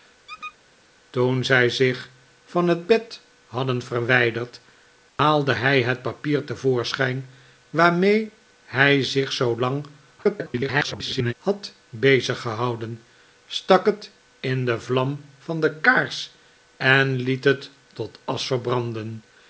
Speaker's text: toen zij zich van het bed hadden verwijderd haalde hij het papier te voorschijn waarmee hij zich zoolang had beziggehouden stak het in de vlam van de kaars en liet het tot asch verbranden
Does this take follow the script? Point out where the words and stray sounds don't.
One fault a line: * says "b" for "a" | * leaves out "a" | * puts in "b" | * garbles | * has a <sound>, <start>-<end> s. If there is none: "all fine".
* has a squeak, 0.3-0.6 s
* has a dropout, 5.1-5.2 s
* garbles